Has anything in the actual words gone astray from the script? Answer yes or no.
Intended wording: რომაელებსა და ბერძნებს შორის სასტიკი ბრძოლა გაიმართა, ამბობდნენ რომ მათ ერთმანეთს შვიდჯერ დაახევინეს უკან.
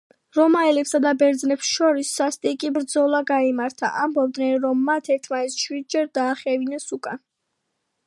no